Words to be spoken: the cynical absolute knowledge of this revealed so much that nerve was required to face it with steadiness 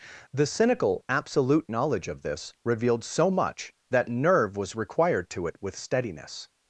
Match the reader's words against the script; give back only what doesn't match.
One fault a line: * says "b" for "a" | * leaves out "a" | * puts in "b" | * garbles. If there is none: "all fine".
* leaves out "face"